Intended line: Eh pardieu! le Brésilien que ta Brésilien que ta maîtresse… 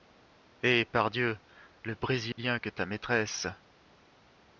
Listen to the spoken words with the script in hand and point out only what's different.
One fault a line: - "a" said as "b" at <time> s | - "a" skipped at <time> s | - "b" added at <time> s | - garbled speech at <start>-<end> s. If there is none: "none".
- "Brésilien que ta" skipped at 2.9 s